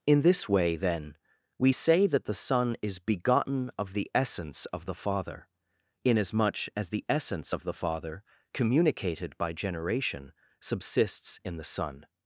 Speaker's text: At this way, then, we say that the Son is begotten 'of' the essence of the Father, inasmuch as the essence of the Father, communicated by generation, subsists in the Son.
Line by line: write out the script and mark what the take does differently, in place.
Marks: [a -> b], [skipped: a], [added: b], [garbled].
[At -> In] this way, then, we say that the Son is begotten 'of' the essence of the Father, inasmuch as the essence of the Father, communicated by generation, subsists in the Son.